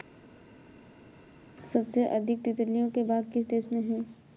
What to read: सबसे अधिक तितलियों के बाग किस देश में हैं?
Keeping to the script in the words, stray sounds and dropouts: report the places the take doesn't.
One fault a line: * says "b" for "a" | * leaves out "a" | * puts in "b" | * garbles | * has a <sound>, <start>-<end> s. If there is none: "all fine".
all fine